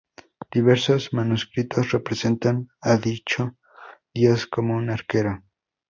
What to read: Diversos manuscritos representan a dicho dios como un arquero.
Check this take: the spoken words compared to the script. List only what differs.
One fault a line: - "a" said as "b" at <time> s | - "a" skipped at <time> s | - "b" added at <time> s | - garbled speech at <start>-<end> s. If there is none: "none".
none